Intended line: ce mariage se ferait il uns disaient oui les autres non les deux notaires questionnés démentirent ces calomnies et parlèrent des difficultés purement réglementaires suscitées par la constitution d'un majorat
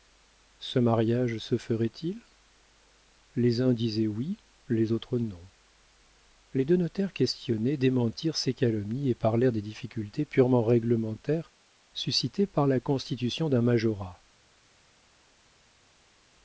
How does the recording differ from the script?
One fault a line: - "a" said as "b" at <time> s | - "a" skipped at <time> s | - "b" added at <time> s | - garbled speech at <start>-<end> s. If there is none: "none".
- "les" added at 3.4 s